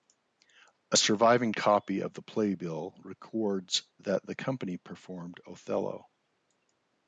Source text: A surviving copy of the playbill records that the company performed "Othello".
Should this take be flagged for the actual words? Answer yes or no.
no